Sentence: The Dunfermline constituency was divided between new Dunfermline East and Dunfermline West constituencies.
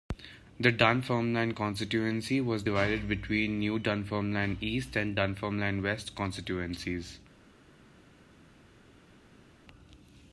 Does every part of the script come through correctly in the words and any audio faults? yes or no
yes